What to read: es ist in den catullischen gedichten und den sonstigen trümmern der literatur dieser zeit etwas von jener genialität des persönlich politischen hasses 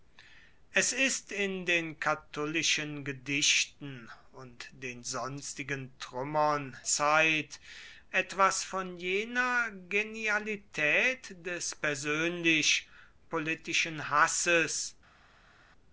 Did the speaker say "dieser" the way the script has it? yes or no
no